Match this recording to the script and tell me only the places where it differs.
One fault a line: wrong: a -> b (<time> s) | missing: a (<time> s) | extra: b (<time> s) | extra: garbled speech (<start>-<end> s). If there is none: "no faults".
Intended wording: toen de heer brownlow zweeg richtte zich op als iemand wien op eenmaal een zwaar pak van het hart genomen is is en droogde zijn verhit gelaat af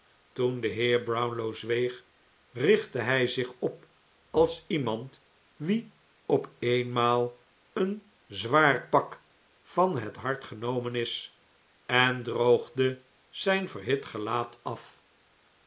extra: hij (3.0 s)
missing: is (11.4 s)